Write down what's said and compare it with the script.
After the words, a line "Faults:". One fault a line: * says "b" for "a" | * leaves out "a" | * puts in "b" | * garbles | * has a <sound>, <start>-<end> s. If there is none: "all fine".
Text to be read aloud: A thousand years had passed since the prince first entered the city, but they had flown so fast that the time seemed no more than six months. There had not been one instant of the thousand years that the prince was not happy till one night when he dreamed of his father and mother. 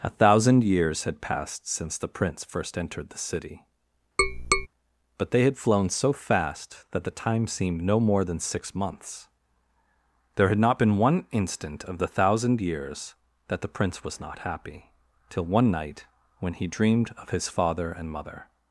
A thousand years had passed since the prince first entered the city, but they had flown so fast that the time seemed no more than six months. There had not been one instant of the thousand years that the prince was not happy till one night when he dreamed of his father and mother.
Faults:
* has a tap, 4.2-4.7 s